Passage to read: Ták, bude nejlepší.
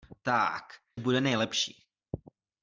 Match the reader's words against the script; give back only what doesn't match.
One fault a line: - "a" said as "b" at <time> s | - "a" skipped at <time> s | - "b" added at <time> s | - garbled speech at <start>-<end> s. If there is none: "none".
none